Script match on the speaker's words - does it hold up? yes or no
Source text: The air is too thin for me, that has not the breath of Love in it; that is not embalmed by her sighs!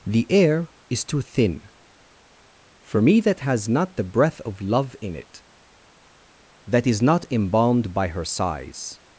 yes